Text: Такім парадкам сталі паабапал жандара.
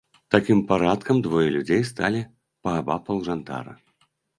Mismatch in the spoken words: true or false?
true